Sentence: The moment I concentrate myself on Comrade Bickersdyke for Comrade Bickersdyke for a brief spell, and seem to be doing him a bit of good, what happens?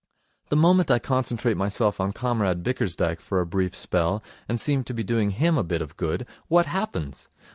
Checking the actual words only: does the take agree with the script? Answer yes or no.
no